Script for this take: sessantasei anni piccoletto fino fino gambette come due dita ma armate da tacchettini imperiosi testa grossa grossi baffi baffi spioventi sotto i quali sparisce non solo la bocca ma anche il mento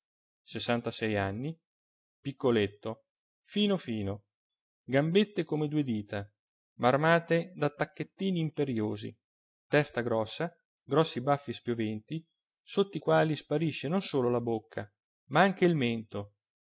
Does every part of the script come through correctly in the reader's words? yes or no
no